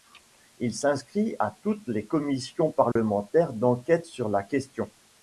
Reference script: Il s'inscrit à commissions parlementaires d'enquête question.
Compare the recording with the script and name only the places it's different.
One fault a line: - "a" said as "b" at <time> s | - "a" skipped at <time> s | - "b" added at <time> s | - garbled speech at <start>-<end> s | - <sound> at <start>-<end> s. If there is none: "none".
- "toutes les" added at 1.6 s
- dropout at 2.9-3.0 s
- "sur la" added at 4.0 s